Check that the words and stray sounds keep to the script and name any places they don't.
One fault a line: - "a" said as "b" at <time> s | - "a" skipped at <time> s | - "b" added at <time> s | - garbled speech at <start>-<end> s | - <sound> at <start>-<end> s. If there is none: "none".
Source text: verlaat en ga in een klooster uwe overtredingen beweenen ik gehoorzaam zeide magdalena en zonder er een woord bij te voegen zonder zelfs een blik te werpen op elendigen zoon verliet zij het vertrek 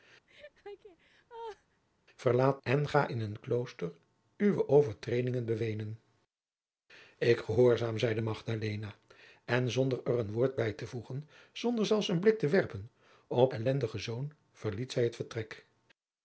- laugh at 0.3-1.8 s